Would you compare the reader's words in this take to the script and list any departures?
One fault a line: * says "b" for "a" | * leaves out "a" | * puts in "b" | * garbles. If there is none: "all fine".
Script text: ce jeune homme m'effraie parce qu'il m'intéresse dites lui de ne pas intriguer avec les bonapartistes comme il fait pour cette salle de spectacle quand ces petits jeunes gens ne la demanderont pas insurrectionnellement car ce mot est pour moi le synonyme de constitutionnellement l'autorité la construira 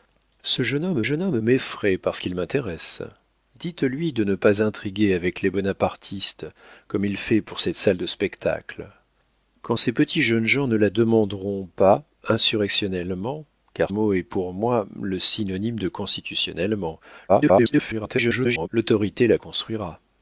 * puts in "jeune homme"
* leaves out "ce"
* garbles